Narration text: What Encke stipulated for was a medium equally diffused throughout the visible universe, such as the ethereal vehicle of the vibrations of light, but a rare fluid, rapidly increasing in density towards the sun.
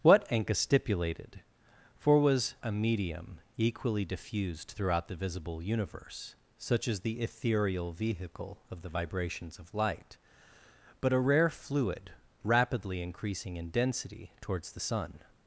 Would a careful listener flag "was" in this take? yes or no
no